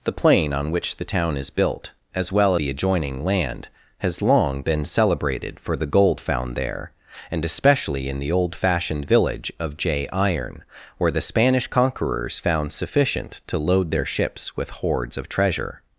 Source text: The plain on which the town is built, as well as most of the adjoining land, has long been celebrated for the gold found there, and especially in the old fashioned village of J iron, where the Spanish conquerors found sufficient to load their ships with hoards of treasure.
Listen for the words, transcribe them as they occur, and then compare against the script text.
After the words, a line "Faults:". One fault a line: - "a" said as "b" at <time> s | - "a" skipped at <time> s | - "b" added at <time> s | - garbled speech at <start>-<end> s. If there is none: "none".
The plain on which the town is built, as well the adjoining land, has long been celebrated for the gold found there, and especially in the old fashioned village of J iron, where the Spanish conquerors found sufficient to load their ships with hoards of treasure.
Faults:
- "as most of" skipped at 2.5 s